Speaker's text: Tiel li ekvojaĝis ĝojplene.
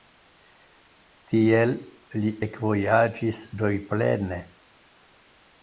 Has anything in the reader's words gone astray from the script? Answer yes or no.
no